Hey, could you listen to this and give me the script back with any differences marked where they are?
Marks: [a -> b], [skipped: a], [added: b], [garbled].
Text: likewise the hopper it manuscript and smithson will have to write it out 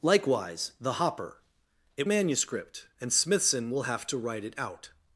likewise the hopper it manuscript and smithson will have to write it out